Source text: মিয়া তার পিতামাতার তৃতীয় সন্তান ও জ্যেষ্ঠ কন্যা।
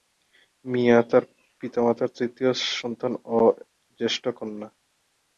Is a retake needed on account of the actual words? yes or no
no